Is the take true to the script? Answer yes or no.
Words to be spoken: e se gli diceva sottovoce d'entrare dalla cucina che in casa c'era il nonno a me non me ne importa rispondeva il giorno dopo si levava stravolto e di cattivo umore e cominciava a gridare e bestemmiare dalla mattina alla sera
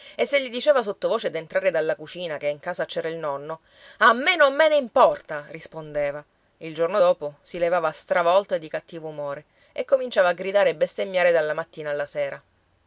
yes